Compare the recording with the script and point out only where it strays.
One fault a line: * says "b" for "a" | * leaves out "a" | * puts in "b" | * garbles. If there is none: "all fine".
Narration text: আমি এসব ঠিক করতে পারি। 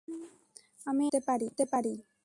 * leaves out "এসব"